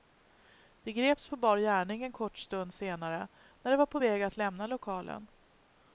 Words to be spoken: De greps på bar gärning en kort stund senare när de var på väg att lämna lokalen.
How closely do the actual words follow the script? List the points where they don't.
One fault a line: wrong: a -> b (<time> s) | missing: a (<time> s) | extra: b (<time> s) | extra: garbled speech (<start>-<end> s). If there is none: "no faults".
no faults